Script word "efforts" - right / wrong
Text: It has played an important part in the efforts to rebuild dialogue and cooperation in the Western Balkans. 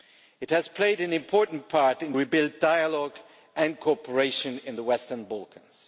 wrong